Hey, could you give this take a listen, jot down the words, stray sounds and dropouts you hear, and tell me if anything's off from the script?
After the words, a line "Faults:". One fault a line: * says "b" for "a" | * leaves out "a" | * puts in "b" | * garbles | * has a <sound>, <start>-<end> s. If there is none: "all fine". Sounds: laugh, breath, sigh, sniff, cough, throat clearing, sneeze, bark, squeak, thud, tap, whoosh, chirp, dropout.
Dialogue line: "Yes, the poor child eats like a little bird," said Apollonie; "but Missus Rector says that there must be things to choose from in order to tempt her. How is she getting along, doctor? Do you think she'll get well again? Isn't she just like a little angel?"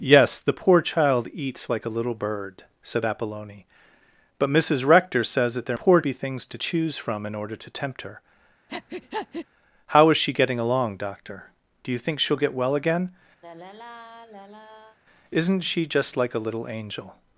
"Yes, the poor child eats like a little bird," said Apollonie; "but Missus Rector says that there poor be things to choose from in order to tempt her. How is she getting along, doctor? Do you think she'll get well again? Isn't she just like a little angel?"
Faults:
* says "poor" for "must"
* has a breath, 8.7-9.5 s
* has a sigh, 13.4-15.0 s